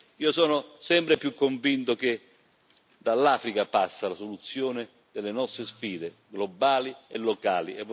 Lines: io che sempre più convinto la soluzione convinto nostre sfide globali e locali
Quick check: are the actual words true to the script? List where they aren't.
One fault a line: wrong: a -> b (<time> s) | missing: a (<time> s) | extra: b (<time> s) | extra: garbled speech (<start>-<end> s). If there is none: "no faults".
wrong: che -> sono (0.3 s)
extra: che dall'africa passi (1.9 s)
wrong: convinto -> delle (5.1 s)